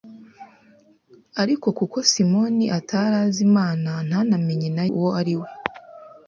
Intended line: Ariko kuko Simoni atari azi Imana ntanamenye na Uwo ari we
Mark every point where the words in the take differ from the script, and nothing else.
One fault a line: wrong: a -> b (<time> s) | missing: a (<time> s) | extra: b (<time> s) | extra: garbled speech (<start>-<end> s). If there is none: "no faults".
no faults